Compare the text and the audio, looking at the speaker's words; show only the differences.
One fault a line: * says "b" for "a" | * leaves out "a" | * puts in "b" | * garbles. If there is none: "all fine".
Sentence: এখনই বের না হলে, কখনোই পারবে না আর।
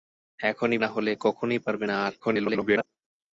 * leaves out "বের"
* garbles